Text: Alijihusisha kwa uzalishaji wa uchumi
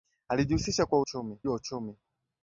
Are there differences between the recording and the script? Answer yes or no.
yes